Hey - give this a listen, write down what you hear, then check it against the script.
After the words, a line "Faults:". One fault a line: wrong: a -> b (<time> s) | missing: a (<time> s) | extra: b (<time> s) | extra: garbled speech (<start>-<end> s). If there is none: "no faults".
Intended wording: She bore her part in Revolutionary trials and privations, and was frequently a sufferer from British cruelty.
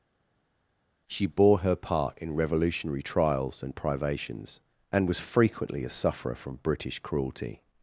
She bore her part in Revolutionary trials and privations, and was frequently a sufferer from British cruelty.
Faults:
no faults